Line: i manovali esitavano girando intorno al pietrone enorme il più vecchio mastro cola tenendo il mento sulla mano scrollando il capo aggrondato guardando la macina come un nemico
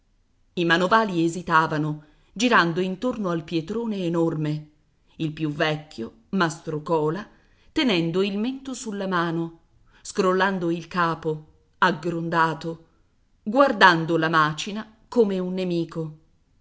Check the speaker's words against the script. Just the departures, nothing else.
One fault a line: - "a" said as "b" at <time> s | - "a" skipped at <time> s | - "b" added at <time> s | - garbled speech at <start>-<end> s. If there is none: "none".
none